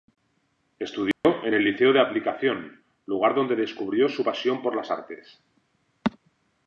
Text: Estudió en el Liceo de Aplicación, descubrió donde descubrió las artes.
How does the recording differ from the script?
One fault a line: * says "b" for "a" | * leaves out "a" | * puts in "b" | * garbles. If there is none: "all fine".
* says "lugar" for "descubrió"
* puts in "su pasión por"